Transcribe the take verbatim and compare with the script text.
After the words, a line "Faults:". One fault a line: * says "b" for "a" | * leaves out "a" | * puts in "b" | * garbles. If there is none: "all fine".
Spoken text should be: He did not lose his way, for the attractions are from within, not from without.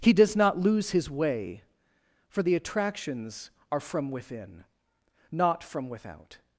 He does not lose his way, for the attractions are from within, not from without.
Faults:
* says "does" for "did"